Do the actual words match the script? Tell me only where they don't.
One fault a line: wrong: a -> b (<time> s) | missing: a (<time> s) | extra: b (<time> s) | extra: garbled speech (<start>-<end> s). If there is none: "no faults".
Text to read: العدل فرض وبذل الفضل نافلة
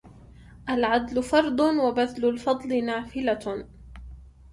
no faults